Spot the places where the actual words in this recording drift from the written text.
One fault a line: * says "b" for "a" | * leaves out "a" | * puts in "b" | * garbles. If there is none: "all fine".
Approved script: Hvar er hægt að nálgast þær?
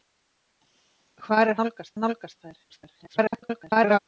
* says "nálgast" for "hægt"
* garbles